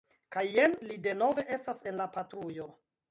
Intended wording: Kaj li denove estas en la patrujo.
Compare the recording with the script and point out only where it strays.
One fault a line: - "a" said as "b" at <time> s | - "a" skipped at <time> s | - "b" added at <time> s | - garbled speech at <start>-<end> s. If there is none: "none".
- "jen" added at 0.5 s